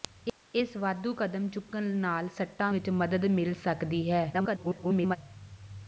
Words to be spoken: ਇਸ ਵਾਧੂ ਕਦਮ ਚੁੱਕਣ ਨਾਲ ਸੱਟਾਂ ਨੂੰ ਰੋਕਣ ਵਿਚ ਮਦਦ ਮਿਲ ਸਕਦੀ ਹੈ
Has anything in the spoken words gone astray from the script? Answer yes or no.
yes